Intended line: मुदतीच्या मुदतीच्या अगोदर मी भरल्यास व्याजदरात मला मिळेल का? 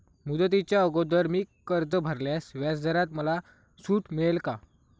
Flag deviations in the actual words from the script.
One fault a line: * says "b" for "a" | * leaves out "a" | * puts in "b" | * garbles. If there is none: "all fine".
* leaves out "मुदतीच्या"
* puts in "कर्ज"
* puts in "सूट"